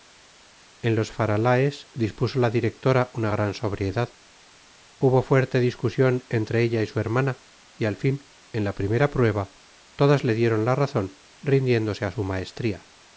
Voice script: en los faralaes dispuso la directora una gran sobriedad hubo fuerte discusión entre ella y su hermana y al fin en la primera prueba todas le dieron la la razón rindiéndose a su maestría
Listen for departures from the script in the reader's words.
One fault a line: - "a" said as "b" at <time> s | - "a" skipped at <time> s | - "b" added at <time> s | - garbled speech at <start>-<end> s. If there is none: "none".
- "la" skipped at 10.8 s